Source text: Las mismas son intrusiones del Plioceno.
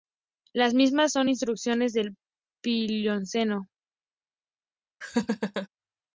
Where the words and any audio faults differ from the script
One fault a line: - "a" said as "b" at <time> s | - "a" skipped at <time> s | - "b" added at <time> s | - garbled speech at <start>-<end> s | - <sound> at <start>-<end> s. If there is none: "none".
- laugh at 5.0-5.7 s